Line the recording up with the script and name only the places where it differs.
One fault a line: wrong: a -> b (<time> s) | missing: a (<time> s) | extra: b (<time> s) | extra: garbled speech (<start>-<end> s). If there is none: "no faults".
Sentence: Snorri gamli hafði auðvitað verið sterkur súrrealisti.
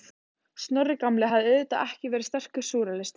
extra: ekki (1.9 s)